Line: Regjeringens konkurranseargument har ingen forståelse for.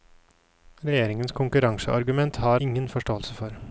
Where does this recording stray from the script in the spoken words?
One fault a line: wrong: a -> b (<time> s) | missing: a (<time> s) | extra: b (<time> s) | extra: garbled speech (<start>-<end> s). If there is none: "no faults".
no faults